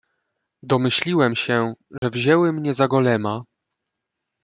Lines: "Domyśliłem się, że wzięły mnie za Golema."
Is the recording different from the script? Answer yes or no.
no